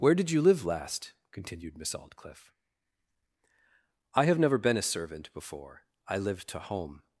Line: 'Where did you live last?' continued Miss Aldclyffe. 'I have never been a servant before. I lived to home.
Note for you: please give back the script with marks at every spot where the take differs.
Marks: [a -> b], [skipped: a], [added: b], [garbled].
'Where did you live last?' continued Miss Aldclyffe. 'I have never been a servant before. I lived to home.